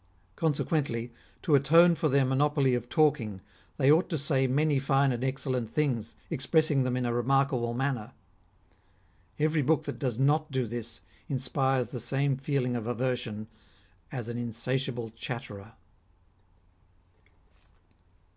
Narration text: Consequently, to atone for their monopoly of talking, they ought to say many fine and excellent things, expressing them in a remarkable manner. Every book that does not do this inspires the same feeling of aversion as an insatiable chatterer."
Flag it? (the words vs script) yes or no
no